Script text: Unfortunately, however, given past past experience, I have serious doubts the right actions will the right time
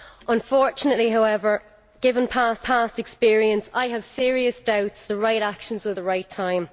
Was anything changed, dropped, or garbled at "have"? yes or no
no